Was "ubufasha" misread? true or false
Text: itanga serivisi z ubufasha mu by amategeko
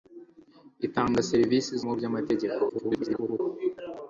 true